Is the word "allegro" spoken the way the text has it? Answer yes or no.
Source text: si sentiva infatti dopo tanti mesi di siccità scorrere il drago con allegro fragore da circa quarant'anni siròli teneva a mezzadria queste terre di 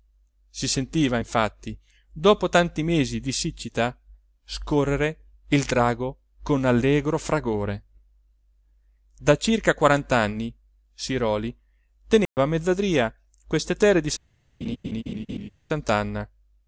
yes